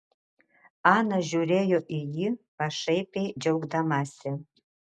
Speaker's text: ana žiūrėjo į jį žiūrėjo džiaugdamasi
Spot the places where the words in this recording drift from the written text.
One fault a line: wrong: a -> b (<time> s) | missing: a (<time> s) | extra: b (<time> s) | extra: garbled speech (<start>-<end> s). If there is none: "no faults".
wrong: žiūrėjo -> pašaipiai (2.6 s)